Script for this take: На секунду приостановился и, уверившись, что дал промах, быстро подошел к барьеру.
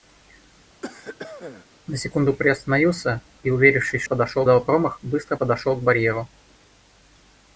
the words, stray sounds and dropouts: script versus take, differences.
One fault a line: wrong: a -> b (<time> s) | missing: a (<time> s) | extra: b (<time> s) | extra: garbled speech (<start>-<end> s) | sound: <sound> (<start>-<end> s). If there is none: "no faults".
sound: cough (0.8-1.7 s)
wrong: что -> подошел (4.0 s)